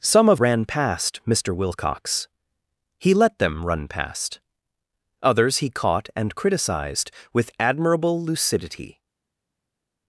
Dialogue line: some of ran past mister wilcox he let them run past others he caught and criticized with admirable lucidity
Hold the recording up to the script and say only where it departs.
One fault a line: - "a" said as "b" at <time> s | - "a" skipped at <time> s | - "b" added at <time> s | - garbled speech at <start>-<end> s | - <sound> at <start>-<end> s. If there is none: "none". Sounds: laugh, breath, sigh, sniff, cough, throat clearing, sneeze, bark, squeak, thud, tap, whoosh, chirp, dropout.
none